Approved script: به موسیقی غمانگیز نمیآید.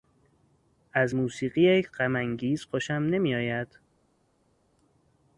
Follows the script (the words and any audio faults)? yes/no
no